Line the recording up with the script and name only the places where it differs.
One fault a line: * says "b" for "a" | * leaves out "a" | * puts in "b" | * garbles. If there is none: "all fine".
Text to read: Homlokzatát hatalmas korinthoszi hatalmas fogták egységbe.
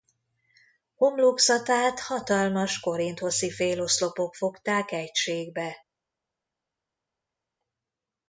* says "féloszlopok" for "hatalmas"